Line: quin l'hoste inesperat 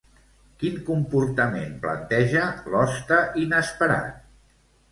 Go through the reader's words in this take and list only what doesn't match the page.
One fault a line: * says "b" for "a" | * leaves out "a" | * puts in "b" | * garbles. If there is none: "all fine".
* puts in "comportament planteja"